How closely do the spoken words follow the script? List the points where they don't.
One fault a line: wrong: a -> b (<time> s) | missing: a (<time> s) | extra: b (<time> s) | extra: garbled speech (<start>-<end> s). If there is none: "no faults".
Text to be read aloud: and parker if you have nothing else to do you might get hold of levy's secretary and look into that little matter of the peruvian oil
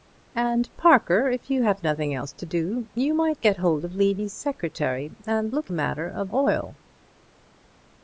missing: into that little (5.7 s)
missing: the peruvian (6.3 s)